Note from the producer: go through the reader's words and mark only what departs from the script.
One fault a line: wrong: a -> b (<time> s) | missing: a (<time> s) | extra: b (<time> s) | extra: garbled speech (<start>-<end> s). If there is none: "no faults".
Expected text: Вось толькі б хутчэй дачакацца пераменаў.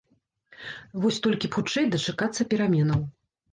no faults